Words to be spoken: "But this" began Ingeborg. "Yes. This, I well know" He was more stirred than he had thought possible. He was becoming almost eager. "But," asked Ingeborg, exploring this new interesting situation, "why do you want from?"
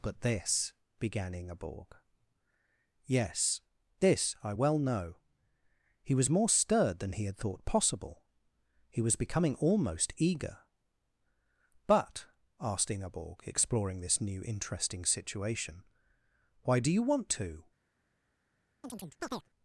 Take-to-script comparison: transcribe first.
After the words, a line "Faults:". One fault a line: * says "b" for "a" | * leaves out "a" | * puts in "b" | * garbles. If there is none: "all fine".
"But this" began Ingeborg. "Yes. This, I well know" He was more stirred than he had thought possible. He was becoming almost eager. "But," asked Ingeborg, exploring this new interesting situation, "why do you want to?"
Faults:
* says "to" for "from"